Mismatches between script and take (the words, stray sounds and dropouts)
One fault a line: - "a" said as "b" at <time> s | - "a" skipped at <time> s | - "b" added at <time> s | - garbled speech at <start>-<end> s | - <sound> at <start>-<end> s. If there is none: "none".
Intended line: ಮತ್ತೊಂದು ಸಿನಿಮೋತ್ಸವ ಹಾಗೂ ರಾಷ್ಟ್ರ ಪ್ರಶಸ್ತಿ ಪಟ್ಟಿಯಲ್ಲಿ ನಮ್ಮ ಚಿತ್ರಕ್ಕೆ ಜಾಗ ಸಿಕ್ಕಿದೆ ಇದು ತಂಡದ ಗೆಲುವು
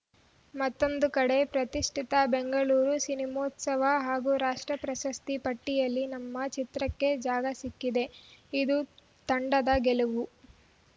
- "ಕಡೆ ಪ್ರತಿಷ್ಠಿತ ಬೆಂಗಳೂರು" added at 1.2 s